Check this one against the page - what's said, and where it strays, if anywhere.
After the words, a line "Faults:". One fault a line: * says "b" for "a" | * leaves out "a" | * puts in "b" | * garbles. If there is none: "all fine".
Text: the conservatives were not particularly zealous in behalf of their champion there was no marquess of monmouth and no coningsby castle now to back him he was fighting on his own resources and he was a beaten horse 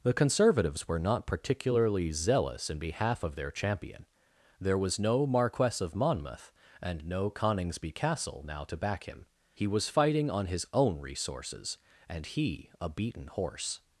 the conservatives were not particularly zealous in behalf of their champion there was no marquess of monmouth and no coningsby castle now to back him he was fighting on his own resources and he a beaten horse
Faults:
* leaves out "was"